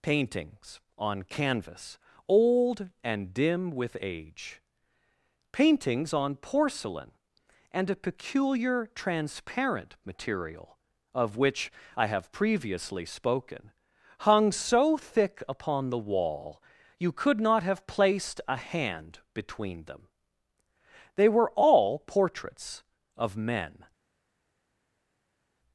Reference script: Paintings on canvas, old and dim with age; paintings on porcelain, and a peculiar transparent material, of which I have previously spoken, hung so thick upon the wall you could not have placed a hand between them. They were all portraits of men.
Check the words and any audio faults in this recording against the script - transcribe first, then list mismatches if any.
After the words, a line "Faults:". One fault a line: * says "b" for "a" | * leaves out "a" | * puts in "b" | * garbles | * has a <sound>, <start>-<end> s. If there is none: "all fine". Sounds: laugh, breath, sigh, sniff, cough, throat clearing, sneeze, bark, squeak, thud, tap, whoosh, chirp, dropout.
Paintings on canvas, old and dim with age; paintings on porcelain, and a peculiar transparent material, of which I have previously spoken, hung so thick upon the wall you could not have placed a hand between them. They were all portraits of men.
Faults:
all fine